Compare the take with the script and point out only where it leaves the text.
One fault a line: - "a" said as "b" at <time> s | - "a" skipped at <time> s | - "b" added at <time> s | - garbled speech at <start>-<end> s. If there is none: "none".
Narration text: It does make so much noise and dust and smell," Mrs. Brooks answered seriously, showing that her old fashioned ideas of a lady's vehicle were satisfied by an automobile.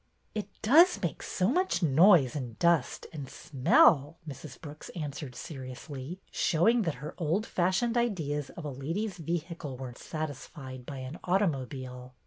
none